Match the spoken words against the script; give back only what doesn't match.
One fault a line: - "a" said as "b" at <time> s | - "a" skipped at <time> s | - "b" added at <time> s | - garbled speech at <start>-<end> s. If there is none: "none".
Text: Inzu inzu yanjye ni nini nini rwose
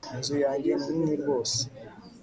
- "inzu" skipped at 0.3 s
- "nini" skipped at 1.1 s